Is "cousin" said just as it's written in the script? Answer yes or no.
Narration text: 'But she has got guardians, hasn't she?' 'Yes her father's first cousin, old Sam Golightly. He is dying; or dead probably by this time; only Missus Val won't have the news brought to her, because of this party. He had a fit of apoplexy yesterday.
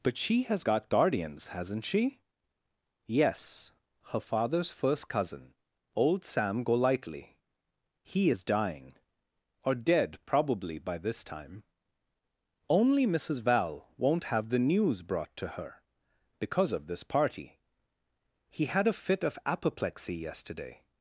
yes